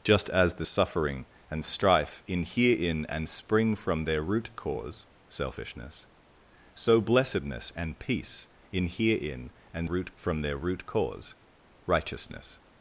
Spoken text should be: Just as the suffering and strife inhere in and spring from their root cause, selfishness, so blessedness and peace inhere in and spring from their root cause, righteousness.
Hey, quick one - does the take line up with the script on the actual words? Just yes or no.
no